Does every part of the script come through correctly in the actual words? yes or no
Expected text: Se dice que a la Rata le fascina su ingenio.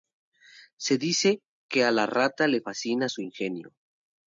yes